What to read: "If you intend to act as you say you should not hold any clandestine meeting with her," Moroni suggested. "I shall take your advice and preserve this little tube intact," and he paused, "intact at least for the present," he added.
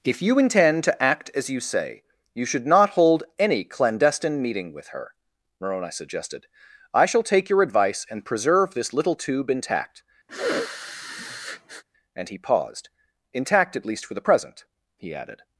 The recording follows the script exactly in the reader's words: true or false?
true